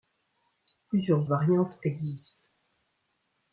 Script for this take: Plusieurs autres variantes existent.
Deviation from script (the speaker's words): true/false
true